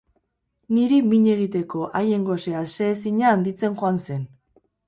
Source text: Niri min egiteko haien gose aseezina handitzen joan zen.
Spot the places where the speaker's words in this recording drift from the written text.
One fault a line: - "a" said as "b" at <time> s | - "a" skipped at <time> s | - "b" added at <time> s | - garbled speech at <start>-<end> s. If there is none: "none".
none